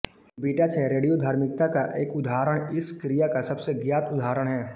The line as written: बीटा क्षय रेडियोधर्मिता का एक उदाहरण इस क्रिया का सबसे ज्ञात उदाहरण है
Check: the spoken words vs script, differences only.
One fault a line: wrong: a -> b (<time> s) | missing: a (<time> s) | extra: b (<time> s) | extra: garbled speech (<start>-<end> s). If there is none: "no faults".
no faults